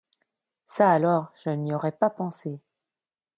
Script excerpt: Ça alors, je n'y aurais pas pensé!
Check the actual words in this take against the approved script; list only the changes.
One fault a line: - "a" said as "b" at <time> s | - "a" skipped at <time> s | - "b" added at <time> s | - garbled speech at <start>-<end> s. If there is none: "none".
none